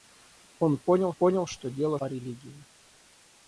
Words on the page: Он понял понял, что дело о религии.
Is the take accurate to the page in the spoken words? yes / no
yes